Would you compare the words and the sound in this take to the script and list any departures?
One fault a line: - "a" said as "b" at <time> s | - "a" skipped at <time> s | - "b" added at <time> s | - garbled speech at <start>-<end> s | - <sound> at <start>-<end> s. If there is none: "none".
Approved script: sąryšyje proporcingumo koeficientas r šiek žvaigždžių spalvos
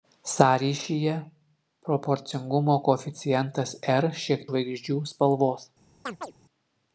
- chirp at 6.1-6.3 s